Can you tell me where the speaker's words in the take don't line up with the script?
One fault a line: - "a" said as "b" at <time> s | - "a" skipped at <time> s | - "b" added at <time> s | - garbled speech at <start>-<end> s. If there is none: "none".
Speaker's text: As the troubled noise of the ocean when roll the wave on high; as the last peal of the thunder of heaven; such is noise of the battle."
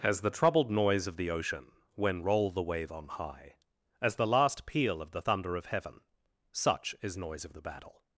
none